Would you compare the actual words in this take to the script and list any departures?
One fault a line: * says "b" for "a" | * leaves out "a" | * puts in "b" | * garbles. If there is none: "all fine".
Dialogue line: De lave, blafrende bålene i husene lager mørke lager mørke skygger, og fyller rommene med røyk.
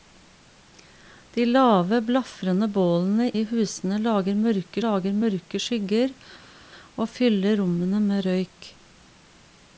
all fine